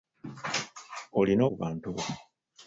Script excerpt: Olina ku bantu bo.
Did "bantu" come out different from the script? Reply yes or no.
no